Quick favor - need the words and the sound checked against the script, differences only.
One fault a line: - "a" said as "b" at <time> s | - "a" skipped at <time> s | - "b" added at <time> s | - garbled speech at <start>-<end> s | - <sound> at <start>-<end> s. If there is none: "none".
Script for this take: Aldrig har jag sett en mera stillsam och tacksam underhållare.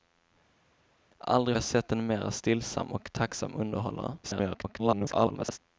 - "har" skipped at 1.6 s
- garbled speech at 4.2-5.6 s